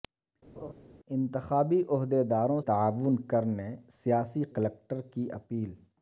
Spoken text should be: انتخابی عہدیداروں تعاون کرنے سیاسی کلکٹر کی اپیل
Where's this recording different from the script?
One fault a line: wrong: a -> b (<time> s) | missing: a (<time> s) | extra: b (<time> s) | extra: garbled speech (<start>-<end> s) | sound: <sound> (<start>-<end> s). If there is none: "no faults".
sound: laugh (0.6-0.7 s)